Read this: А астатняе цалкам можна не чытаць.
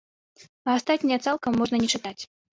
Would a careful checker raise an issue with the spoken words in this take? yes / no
no